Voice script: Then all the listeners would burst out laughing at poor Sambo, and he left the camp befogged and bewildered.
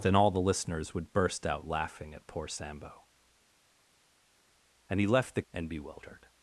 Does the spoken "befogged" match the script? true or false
false